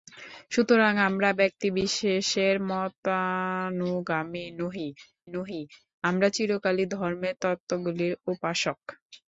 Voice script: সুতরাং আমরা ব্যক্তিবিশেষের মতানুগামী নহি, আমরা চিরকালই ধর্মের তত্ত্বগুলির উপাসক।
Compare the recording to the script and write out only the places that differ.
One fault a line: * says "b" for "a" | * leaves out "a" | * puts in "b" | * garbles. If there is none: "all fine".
* puts in "নহি"